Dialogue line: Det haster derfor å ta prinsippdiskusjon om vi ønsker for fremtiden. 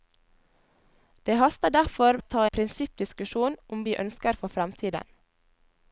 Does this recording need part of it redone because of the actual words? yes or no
no